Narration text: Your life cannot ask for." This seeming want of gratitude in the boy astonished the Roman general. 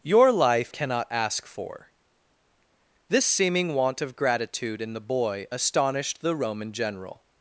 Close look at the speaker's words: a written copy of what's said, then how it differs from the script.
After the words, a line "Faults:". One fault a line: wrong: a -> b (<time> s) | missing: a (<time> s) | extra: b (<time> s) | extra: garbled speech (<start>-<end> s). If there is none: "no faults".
Your life cannot ask for." This seeming want of gratitude in the boy astonished the Roman general.
Faults:
no faults